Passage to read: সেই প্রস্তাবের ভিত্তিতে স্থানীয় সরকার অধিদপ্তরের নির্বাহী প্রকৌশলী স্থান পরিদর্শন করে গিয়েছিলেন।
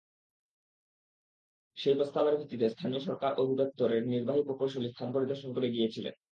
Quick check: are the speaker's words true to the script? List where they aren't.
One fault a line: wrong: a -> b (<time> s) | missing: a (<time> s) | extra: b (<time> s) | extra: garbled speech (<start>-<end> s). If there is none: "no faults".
no faults